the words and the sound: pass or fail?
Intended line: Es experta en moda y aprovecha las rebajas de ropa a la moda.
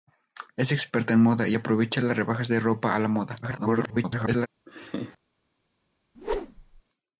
fail